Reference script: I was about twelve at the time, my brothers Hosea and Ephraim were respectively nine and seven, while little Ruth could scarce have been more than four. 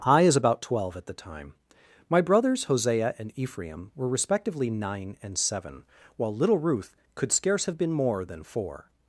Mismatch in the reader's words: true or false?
true